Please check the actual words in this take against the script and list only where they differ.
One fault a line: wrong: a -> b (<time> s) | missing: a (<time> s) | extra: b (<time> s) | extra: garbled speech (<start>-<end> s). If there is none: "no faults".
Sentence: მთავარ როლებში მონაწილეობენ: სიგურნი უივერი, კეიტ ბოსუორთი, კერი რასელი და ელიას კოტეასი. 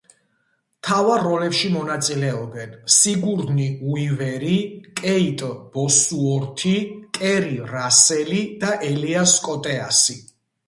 no faults